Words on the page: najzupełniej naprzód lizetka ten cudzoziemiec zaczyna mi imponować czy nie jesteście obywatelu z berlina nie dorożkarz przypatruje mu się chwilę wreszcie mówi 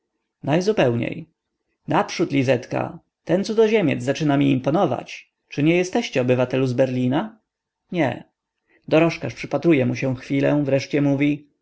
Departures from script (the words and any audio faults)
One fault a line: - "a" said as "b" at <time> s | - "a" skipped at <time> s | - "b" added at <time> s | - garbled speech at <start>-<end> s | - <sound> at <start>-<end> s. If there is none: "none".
none